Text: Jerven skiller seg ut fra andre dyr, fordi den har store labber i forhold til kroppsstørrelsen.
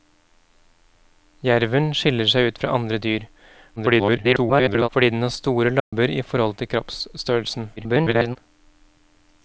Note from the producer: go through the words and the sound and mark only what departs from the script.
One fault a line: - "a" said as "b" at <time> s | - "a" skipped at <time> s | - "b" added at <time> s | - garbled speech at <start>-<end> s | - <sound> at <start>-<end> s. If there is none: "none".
- garbled speech at 3.8-4.9 s
- dropout at 5.8-5.9 s
- garbled speech at 7.8-8.4 s